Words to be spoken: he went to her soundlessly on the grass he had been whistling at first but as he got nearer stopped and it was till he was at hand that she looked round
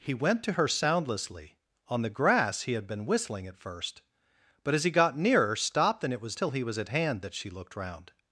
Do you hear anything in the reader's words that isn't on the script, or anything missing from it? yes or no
no